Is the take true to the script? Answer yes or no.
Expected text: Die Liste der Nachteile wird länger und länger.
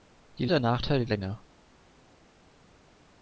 no